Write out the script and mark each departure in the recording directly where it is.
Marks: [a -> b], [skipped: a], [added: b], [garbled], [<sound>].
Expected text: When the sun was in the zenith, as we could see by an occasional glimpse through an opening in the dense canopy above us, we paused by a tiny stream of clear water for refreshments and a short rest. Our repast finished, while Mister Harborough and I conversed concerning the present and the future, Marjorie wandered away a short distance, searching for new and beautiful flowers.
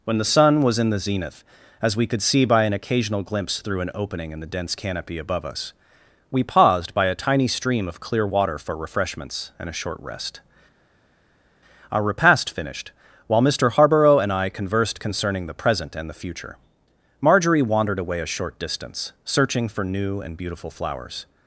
When the sun was in the zenith, as we could see by an occasional glimpse through an opening in the dense canopy above us, we paused by a tiny stream of clear water for refreshments and a short rest. Our repast finished, while Mister Harborough and I conversed concerning the present and the future, Marjorie wandered away a short distance, searching for new and beautiful flowers.